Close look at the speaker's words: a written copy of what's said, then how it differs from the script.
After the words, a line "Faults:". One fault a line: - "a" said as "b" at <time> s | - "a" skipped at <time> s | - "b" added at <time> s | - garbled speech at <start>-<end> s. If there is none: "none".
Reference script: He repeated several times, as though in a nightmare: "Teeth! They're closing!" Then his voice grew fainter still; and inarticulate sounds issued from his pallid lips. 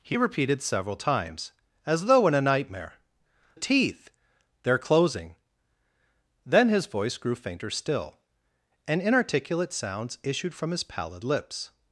He repeated several times, as though in a nightmare: "Teeth! They're closing!" Then his voice grew fainter still; and inarticulate sounds issued from his pallid lips.
Faults:
none